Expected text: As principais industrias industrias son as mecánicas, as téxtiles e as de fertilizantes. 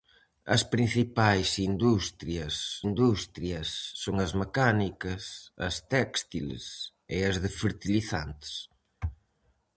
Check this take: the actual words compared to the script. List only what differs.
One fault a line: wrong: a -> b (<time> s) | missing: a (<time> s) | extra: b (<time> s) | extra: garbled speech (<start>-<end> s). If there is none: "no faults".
no faults